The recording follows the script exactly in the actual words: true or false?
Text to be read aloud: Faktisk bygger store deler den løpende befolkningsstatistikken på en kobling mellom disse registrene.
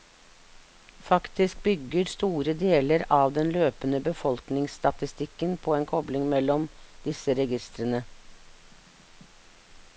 false